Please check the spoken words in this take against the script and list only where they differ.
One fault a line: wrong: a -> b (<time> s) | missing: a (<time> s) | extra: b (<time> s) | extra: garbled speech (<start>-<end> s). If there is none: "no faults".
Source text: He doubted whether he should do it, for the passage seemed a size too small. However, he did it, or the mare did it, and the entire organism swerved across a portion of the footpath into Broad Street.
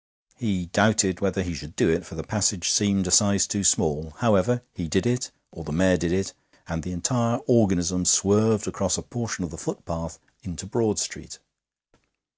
no faults